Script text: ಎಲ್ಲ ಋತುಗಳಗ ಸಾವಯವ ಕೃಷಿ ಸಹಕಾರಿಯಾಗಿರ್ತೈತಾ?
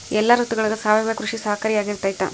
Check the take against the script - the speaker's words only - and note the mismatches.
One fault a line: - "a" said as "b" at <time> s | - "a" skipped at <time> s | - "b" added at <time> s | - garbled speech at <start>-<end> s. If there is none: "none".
none